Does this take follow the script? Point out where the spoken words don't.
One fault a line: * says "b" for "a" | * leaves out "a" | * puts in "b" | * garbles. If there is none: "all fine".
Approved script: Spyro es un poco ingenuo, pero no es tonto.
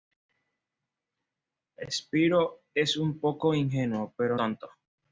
* leaves out "no es"